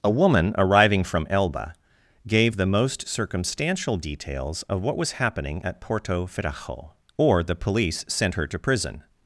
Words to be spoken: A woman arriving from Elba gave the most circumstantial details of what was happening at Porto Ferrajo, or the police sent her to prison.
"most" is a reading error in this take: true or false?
false